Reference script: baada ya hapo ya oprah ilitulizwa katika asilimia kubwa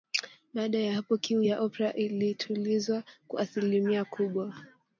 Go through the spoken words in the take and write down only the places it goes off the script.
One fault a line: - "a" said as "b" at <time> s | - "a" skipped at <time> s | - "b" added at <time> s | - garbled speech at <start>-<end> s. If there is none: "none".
- "kiu" added at 1.2 s
- "katika" said as "kwa" at 3.3 s